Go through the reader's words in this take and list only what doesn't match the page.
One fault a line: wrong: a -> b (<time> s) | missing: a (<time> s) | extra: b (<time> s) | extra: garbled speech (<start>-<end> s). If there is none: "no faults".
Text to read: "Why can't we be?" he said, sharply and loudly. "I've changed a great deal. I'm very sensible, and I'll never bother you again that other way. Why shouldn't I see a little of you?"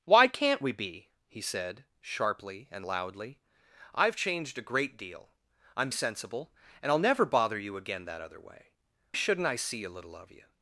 missing: very (5.9 s)
missing: Why (8.7 s)